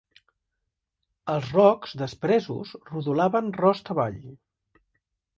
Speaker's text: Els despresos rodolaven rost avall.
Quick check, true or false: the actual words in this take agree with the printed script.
false